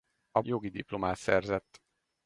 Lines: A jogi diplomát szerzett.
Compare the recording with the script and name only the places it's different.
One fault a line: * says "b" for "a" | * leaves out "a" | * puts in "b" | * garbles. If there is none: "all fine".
all fine